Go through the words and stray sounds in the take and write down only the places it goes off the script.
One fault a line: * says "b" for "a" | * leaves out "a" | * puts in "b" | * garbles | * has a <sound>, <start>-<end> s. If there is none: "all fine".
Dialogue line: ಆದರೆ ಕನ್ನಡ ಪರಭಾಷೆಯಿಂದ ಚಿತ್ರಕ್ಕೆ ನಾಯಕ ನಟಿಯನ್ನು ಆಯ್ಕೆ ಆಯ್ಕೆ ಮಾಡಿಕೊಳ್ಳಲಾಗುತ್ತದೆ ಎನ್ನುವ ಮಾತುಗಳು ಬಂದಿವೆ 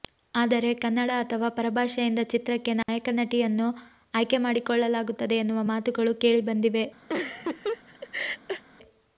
* puts in "ಅಥವಾ"
* has a dropout, 2.8-2.9 s
* leaves out "ಆಯ್ಕೆ"
* puts in "ಕೇಳಿ"
* has a laugh, 7.1-8.6 s